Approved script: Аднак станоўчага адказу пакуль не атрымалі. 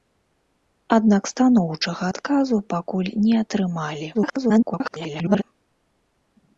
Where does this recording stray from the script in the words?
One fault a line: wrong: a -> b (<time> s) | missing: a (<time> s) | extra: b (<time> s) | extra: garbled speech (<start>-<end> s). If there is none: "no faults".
extra: garbled speech (4.1-5.4 s)